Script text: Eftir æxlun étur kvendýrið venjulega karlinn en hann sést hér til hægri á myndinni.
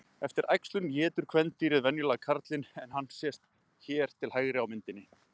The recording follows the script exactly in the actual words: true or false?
true